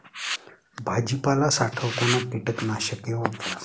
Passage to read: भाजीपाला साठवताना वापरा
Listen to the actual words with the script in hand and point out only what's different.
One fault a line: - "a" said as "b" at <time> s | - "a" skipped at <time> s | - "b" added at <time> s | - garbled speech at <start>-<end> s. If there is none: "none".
- "कीटकनाशके" added at 2.3 s